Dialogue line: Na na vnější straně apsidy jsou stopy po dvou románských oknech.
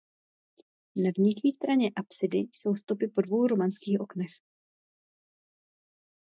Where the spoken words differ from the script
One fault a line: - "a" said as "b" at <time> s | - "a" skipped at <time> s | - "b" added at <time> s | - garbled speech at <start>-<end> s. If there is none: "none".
- "na" skipped at 1.1 s